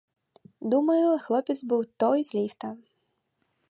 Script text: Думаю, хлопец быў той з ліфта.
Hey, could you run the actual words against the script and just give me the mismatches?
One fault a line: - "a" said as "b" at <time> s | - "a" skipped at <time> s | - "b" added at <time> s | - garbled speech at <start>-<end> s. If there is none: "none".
none